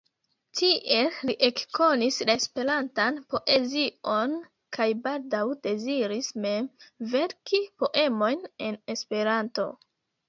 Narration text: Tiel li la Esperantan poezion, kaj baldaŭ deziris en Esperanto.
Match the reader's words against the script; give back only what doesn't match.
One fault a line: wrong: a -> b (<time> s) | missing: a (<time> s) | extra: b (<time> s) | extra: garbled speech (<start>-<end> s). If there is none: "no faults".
extra: ekkonis (1.5 s)
extra: mem verki poemojn (6.5 s)